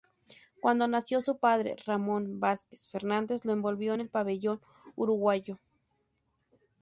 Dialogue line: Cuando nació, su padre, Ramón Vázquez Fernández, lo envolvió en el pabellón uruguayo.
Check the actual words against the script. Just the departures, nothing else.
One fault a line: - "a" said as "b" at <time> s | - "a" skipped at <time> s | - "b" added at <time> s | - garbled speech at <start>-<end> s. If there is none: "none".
none